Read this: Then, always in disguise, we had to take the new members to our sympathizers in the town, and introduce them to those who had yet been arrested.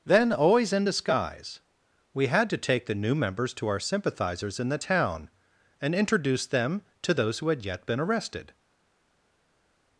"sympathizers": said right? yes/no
yes